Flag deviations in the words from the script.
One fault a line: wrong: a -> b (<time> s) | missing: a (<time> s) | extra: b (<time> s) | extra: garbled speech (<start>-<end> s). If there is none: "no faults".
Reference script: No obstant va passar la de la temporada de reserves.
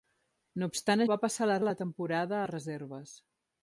no faults